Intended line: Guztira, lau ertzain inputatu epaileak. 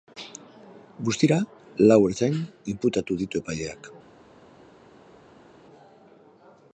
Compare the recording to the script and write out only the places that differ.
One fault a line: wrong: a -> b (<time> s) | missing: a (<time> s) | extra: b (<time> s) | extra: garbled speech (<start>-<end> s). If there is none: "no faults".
extra: ditu (3.2 s)